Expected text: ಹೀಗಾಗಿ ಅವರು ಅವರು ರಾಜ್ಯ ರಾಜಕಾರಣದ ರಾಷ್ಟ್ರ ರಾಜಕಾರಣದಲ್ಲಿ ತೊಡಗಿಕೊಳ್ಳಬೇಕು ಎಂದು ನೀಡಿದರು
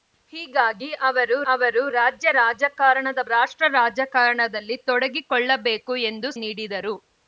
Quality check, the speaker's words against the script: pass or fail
pass